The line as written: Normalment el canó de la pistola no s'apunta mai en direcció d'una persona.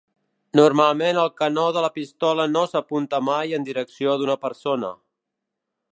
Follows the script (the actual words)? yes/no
yes